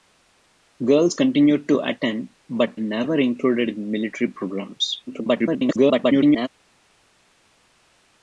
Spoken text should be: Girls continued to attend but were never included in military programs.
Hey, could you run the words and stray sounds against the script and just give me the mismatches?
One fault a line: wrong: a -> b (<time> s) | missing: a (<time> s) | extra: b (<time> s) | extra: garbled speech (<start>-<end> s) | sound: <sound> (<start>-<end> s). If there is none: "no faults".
missing: were (2.8 s)
extra: garbled speech (5.1-6.5 s)